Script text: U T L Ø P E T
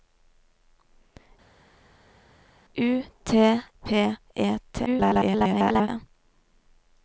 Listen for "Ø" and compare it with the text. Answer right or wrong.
wrong